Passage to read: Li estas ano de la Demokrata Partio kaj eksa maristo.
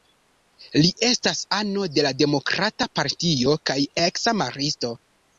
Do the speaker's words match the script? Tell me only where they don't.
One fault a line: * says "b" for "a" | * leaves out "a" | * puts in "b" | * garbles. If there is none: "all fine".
all fine